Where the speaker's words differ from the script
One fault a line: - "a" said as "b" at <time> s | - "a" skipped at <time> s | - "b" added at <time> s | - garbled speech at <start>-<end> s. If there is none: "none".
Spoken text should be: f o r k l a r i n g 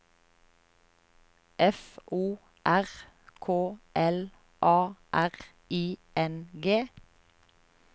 none